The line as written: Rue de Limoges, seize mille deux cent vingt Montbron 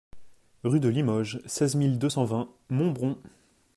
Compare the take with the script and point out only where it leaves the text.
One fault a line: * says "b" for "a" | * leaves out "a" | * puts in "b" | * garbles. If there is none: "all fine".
all fine